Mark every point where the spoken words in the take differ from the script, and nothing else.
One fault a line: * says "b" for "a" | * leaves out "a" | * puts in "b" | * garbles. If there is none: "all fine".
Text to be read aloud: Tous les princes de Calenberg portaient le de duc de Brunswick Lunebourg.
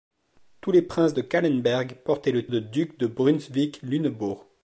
all fine